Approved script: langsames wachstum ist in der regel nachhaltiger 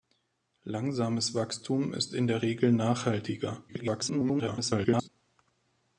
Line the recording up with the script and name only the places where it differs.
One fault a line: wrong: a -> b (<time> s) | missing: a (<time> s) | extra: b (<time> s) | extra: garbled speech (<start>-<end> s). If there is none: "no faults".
extra: garbled speech (3.7-5.1 s)